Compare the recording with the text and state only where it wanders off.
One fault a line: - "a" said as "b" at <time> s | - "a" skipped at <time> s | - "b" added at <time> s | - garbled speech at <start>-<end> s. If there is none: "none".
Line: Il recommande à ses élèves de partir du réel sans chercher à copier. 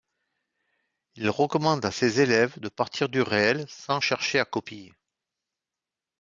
none